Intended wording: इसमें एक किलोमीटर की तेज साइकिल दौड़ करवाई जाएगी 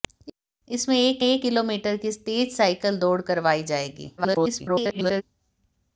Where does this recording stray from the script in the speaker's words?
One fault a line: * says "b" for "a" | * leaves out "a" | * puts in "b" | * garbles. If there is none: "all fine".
* puts in "एक"
* garbles